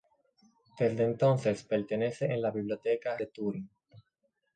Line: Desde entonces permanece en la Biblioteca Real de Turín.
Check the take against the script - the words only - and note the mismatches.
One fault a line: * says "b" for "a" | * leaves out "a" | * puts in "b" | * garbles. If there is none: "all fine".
* leaves out "Real"